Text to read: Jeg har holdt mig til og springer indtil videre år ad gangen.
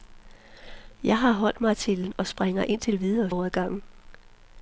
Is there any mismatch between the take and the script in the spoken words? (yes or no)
no